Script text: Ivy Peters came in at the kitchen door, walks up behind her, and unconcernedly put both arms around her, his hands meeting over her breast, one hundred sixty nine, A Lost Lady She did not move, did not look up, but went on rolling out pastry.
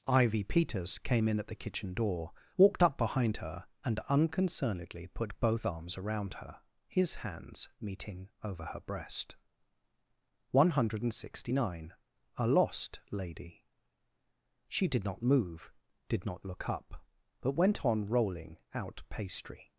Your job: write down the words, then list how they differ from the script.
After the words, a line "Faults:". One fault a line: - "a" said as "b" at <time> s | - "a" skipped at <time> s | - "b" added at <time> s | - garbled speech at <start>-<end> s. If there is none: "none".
Ivy Peters came in at the kitchen door, walked up behind her, and unconcernedly put both arms around her, his hands meeting over her breast, one hundred sixty nine, A Lost Lady She did not move, did not look up, but went on rolling out pastry.
Faults:
- "walks" said as "walked" at 2.6 s